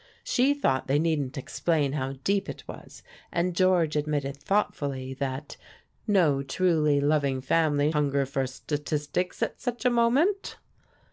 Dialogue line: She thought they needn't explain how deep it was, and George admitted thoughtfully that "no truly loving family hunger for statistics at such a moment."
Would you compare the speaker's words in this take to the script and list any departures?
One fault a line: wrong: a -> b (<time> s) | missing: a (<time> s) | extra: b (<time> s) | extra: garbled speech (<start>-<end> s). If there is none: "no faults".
no faults